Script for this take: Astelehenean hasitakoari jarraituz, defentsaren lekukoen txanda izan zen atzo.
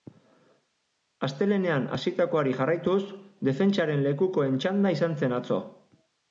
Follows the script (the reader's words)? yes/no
yes